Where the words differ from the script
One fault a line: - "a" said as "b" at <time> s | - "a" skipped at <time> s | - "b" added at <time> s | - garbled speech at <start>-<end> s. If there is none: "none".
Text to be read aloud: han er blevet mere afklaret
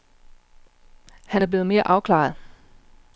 none